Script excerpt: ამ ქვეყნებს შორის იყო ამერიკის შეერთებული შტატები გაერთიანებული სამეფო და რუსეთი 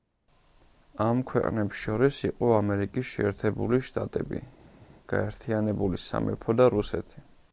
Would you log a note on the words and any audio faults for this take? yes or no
no